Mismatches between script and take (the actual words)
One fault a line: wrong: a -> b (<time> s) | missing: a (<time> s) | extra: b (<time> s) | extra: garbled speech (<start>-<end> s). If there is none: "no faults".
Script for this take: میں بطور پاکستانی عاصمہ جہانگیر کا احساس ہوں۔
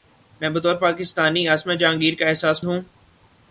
no faults